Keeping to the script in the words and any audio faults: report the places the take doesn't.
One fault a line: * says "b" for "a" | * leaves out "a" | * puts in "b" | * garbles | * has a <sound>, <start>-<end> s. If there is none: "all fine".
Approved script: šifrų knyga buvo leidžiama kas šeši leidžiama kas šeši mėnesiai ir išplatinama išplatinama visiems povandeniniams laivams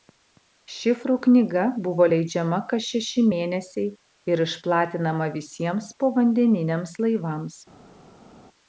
* leaves out "leidžiama kas šeši"
* leaves out "išplatinama"